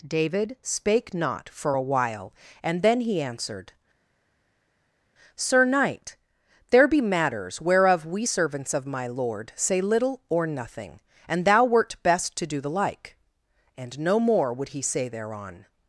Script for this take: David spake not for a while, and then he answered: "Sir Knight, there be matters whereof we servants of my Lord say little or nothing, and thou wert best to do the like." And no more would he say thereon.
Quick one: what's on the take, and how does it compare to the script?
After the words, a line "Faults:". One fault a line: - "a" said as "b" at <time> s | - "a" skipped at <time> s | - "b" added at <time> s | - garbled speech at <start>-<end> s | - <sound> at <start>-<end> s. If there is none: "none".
David spake not for a while, and then he answered: "Sir Knight, there be matters whereof we servants of my Lord say little or nothing, and thou wert best to do the like." And no more would he say thereon.
Faults:
none